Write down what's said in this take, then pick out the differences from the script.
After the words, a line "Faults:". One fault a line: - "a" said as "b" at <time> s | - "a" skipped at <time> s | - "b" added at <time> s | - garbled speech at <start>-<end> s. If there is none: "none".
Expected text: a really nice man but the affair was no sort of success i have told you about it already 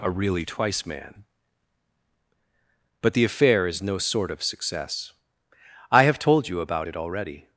a really twice man but the affair is no sort of success i have told you about it already
Faults:
- "nice" said as "twice" at 0.5 s
- "was" said as "is" at 3.7 s